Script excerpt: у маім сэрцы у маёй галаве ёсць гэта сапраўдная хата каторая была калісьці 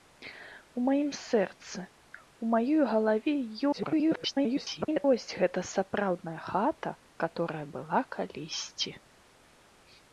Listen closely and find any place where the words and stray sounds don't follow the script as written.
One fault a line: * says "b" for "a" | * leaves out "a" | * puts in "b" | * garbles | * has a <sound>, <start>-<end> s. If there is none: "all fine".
* garbles